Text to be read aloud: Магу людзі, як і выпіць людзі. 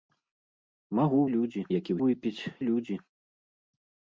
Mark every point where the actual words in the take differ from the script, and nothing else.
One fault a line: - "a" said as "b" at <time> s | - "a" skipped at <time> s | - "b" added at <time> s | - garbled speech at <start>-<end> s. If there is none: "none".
none